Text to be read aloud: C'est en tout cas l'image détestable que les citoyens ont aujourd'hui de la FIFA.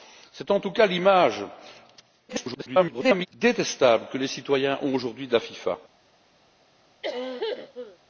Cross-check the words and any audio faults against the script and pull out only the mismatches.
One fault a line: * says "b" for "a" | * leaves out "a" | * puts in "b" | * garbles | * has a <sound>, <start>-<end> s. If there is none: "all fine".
* garbles
* has a cough, 7.0-8.0 s